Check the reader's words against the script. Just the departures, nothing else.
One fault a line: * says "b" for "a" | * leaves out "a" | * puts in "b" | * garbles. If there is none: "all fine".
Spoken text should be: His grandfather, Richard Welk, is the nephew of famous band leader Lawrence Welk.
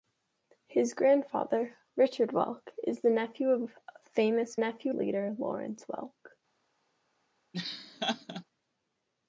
* says "nephew" for "band"